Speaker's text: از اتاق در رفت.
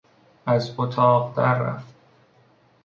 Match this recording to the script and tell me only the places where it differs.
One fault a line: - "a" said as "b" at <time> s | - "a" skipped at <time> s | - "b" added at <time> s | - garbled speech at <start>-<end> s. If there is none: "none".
none